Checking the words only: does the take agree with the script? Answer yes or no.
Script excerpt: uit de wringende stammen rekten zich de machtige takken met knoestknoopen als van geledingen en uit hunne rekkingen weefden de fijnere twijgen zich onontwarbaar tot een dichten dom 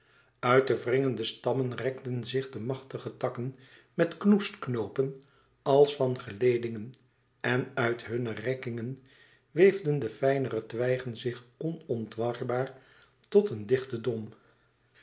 yes